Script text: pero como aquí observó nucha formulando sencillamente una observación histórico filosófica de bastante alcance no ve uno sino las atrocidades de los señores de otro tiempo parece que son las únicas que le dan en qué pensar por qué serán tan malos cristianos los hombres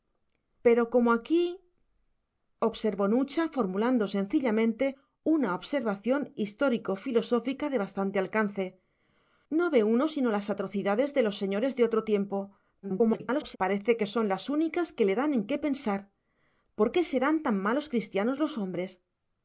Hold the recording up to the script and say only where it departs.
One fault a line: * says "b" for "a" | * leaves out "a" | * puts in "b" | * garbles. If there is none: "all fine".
* garbles